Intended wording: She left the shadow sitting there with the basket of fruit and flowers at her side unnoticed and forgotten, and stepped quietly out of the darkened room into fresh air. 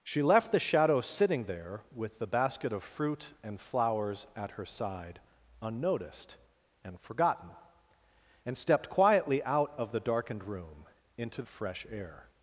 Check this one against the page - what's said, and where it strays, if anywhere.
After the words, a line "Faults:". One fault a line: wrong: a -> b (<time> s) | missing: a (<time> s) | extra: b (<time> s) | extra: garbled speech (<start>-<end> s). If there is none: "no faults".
She left the shadow sitting there with the basket of fruit and flowers at her side unnoticed and forgotten, and stepped quietly out of the darkened room into fresh air.
Faults:
no faults